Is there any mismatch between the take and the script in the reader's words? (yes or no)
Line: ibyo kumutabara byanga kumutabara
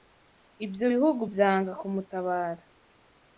yes